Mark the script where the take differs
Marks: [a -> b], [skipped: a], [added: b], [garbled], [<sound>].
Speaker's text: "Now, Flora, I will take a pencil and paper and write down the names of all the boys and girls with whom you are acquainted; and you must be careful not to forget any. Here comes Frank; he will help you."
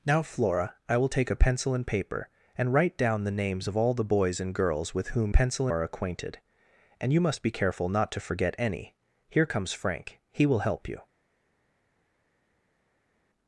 "Now, Flora, I will take a pencil and paper and write down the names of all the boys and girls with whom [you -> pencil] are acquainted; and you must be careful not to forget any. Here comes Frank; he will help you."